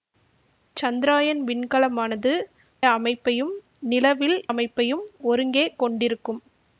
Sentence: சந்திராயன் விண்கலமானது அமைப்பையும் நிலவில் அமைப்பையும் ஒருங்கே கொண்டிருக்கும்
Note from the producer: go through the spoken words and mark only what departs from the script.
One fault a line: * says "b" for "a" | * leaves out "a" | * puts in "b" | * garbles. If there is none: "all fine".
all fine